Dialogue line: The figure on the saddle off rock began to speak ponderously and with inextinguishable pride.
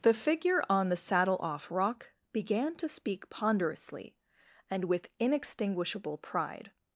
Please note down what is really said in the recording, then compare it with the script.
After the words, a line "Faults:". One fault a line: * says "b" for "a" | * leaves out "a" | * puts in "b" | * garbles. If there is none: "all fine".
The figure on the saddle off rock began to speak ponderously and with inextinguishable pride.
Faults:
all fine